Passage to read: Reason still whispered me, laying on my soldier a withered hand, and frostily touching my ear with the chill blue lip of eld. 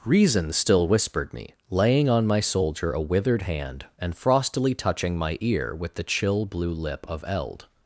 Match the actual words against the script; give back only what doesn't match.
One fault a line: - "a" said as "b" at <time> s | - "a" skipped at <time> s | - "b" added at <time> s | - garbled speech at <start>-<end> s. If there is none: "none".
none